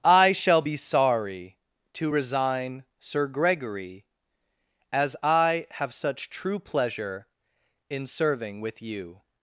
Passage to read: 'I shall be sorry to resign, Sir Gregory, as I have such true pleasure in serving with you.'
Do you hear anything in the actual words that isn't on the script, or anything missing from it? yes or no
no